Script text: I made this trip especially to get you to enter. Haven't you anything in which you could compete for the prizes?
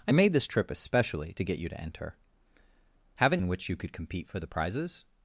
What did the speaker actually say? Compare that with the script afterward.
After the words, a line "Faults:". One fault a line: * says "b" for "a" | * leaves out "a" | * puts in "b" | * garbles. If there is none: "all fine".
I made this trip especially to get you to enter. Haven't in which you could compete for the prizes?
Faults:
* leaves out "you anything"